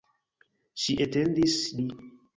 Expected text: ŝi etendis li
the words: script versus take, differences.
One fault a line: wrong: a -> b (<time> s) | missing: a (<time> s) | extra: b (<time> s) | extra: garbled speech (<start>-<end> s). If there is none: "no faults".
no faults